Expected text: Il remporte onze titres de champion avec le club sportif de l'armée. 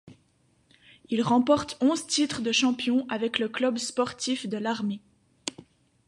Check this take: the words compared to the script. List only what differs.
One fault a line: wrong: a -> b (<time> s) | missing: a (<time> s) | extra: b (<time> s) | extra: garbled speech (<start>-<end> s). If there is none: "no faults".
no faults